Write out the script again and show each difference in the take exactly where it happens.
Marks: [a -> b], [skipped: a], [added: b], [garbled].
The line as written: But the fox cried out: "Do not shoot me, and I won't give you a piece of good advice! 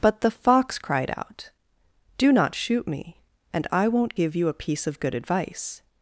But the fox cried out: "Do not shoot me, and I won't give you a piece of good advice!